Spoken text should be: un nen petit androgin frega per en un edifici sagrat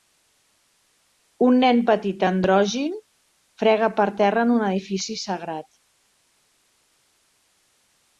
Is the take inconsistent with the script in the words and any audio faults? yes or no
yes